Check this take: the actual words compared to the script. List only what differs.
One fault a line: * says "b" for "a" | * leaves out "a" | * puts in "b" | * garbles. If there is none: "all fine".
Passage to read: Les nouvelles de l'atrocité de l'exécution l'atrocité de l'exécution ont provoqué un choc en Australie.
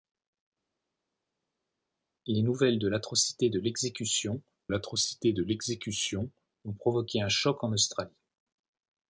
all fine